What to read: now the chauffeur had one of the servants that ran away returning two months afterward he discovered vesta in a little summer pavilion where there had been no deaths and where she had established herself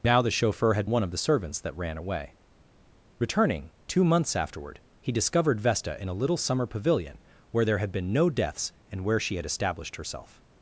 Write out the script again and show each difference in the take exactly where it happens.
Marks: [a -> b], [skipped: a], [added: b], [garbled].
now the chauffeur had one of the servants that ran away returning two months afterward he discovered vesta in a little summer pavilion where there had been no deaths and where she had established herself